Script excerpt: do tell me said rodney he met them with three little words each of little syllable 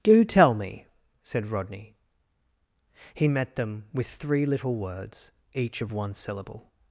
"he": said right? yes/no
yes